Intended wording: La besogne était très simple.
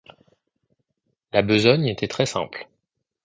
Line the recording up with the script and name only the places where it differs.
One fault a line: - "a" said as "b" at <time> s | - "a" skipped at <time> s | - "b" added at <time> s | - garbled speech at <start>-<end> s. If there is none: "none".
none